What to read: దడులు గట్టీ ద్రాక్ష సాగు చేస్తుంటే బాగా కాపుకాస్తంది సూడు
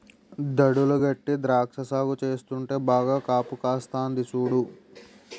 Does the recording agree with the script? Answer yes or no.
yes